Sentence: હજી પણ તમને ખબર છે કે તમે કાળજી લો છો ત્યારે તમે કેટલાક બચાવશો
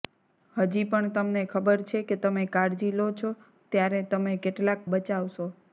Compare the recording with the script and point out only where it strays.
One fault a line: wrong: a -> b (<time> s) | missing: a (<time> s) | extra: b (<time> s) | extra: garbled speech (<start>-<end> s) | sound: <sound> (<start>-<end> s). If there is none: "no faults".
no faults